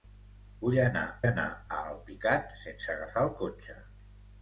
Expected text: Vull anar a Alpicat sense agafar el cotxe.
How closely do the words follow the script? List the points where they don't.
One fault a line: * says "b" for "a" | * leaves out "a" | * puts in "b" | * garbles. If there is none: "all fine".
* puts in "anar"